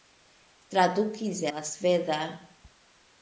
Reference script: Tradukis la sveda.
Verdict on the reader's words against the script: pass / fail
pass